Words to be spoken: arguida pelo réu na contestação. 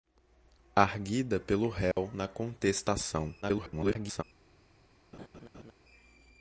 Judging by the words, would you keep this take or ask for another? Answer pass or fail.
fail